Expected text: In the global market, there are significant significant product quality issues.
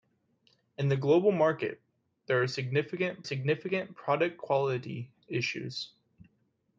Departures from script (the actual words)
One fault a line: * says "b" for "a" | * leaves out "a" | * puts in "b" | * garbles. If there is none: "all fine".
all fine